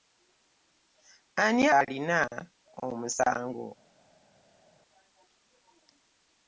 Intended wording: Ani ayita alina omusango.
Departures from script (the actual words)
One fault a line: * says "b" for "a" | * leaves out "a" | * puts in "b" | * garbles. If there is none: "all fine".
* leaves out "ayita"